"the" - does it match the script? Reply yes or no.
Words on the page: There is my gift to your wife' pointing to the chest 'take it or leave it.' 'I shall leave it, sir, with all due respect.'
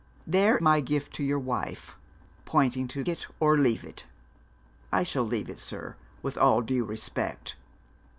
no